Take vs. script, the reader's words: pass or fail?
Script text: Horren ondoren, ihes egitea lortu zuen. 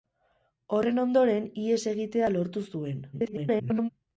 fail